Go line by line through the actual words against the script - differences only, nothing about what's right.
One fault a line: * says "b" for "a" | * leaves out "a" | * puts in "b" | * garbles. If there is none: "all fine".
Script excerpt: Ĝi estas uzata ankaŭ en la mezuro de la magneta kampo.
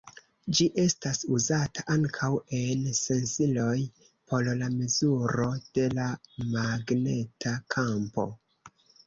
* puts in "sensiloj por"